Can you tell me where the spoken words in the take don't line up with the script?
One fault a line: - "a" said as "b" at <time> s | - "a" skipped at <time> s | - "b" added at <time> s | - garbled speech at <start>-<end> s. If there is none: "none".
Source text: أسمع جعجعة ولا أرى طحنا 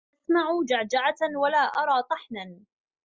none